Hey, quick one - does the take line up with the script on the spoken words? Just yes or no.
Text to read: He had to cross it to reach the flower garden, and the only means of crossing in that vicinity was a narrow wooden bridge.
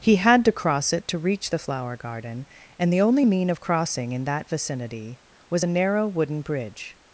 no